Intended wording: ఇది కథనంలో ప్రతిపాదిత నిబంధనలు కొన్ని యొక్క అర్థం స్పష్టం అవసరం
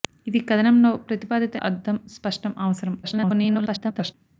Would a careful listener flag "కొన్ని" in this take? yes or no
yes